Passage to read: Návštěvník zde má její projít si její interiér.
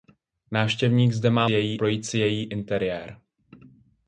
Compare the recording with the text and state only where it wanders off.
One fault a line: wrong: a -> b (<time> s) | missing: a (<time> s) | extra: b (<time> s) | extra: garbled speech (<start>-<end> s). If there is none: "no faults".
no faults